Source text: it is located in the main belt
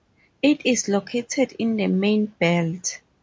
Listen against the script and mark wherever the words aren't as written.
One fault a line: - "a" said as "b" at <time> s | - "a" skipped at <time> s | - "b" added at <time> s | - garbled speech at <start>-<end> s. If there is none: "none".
none